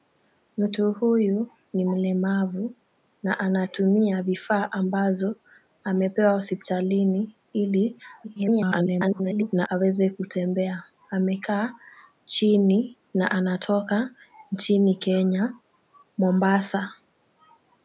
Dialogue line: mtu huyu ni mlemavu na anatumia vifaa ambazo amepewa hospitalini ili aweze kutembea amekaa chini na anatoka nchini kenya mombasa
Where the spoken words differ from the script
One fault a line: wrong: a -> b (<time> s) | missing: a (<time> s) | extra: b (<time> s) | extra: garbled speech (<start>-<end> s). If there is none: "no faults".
extra: garbled speech (8.2-9.7 s)